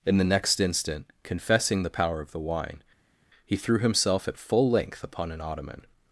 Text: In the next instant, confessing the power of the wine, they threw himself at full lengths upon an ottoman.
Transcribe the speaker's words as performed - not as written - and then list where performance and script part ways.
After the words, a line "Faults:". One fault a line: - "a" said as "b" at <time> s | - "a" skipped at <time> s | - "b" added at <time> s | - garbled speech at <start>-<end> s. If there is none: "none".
In the next instant, confessing the power of the wine, he threw himself at full length upon an ottoman.
Faults:
- "they" said as "he" at 3.4 s
- "lengths" said as "length" at 4.7 s